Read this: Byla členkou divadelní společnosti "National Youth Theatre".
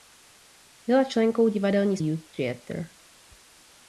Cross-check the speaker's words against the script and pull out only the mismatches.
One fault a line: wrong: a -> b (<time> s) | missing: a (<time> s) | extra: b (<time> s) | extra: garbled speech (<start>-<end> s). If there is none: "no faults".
missing: společnosti National (2.0 s)